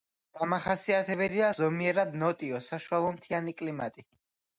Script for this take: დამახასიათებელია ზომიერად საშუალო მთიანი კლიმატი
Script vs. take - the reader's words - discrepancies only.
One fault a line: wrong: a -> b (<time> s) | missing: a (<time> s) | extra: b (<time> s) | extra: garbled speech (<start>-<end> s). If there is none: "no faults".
extra: ნოტიო (2.2 s)